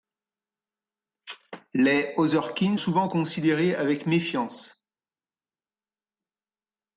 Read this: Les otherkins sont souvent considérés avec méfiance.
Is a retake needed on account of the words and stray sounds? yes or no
yes